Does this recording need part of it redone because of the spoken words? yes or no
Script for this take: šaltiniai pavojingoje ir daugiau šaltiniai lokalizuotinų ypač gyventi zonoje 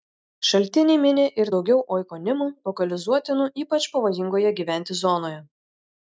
yes